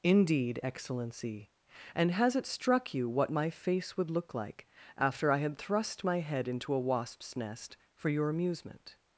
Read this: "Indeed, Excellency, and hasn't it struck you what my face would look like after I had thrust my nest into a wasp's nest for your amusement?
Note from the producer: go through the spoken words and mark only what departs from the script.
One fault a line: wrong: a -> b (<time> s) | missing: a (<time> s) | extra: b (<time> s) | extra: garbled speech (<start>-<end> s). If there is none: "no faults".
wrong: hasn't -> has (2.1 s)
wrong: nest -> head (6.2 s)